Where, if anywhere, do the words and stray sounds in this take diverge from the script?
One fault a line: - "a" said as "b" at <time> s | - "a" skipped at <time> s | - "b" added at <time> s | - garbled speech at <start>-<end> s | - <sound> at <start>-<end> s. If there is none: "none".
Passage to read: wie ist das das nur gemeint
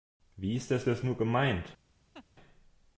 - laugh at 2.1-2.3 s